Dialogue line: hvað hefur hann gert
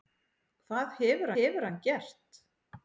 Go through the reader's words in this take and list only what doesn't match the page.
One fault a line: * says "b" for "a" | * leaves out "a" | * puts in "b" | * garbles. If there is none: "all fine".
* puts in "hefur"